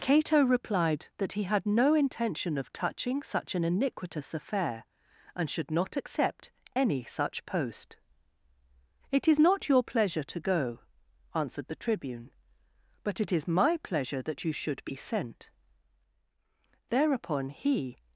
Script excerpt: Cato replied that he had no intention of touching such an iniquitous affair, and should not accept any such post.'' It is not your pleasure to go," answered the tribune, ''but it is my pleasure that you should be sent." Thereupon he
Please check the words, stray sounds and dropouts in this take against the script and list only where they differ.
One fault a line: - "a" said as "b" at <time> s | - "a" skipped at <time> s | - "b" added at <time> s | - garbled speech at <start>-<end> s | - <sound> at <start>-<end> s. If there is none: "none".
none